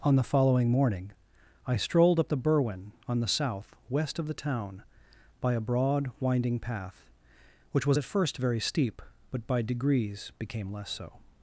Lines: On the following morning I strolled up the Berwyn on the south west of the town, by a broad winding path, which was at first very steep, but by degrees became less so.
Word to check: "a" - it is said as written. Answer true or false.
true